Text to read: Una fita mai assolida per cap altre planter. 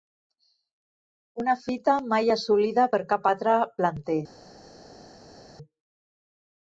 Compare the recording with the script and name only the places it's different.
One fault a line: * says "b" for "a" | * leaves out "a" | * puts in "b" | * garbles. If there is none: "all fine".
all fine